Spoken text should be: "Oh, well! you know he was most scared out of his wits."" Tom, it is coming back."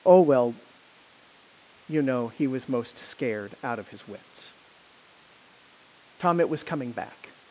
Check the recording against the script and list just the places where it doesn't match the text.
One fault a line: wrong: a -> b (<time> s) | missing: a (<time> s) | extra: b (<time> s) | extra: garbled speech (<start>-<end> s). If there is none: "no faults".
wrong: is -> was (6.5 s)